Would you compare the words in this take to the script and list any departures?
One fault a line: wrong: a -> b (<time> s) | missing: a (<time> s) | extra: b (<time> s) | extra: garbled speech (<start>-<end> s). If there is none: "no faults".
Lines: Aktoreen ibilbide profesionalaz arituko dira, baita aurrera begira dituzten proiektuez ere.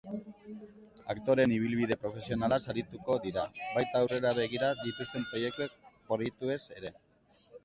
no faults